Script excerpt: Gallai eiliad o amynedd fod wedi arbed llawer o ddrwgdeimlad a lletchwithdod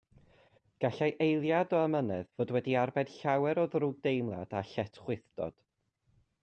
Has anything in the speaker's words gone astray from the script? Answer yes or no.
no